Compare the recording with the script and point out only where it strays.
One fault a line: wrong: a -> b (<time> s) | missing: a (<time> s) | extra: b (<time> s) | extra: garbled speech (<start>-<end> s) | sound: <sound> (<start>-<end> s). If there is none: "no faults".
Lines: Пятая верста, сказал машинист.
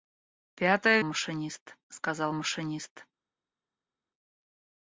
wrong: верста -> машинист (1.0 s)